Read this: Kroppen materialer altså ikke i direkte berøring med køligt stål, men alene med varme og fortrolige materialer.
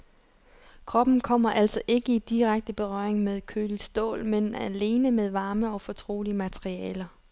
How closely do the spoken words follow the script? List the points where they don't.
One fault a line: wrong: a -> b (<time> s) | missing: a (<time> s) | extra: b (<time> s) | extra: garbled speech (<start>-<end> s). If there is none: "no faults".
wrong: materialer -> kommer (1.2 s)